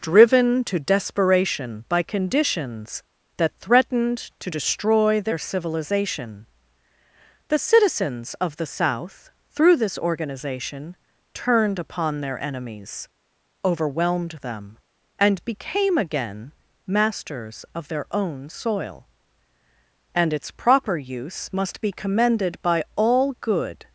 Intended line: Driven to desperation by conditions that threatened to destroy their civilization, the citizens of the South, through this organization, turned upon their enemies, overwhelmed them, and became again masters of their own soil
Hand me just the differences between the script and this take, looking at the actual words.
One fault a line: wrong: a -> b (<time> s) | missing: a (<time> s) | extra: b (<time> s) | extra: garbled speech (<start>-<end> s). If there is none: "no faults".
extra: and its proper use must be commended by all good (20.1 s)